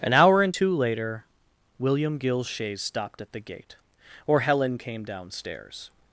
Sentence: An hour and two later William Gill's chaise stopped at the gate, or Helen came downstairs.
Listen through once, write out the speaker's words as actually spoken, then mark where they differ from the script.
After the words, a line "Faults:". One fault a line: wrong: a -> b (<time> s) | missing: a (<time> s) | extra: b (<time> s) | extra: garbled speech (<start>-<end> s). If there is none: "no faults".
An hour and two later William Gill's chaise stopped at the gate, or Helen came downstairs.
Faults:
no faults